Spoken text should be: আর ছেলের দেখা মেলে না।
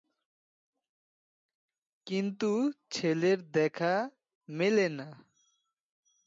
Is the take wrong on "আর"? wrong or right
wrong